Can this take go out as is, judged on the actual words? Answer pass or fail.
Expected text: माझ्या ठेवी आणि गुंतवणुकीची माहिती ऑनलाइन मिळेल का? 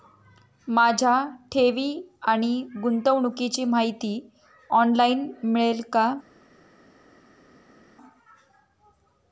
pass